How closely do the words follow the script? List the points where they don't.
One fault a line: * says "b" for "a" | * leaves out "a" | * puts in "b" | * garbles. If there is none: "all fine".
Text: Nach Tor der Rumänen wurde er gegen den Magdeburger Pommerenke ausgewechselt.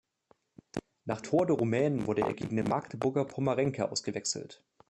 all fine